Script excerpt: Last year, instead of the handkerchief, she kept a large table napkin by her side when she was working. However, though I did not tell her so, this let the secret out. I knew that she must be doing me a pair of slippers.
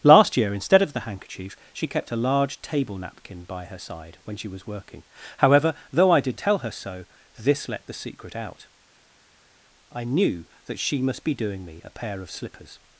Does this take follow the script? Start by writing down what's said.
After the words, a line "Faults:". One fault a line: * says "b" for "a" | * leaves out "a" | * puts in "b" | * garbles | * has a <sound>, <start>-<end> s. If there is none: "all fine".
Last year, instead of the handkerchief, she kept a large table napkin by her side when she was working. However, though I did tell her so, this let the secret out. I knew that she must be doing me a pair of slippers.
Faults:
* leaves out "not"